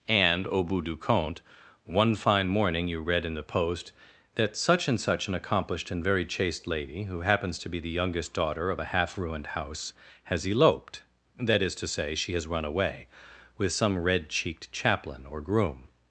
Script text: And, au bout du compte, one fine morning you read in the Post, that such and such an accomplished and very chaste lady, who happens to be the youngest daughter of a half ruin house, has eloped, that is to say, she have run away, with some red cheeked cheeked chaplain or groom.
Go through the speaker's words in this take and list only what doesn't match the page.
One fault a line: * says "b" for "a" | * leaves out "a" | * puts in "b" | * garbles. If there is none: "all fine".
* says "ruined" for "ruin"
* says "has" for "have"
* leaves out "cheeked"